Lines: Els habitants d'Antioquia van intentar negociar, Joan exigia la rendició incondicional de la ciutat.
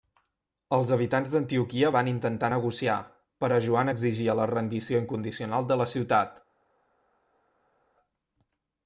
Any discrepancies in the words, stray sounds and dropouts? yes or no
yes